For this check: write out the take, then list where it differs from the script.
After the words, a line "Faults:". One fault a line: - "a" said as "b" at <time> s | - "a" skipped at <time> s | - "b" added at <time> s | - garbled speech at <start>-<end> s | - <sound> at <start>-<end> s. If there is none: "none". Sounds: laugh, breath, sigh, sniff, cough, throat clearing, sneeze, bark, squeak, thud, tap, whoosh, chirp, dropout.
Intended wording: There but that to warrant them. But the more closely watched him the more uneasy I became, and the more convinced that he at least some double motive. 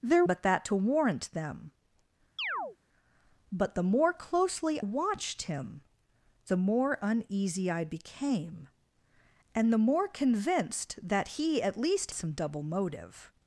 There but that to warrant them. But the more closely watched him the more uneasy I became, and the more convinced that he at least some double motive.
Faults:
- chirp at 2.4-2.8 s